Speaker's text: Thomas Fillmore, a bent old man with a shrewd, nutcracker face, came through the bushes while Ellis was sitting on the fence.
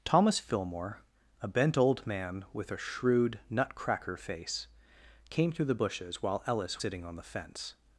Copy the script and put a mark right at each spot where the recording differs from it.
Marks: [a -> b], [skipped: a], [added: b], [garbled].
Thomas Fillmore, a bent old man with a shrewd, nutcracker face, came through the bushes while Ellis [skipped: was] sitting on the fence.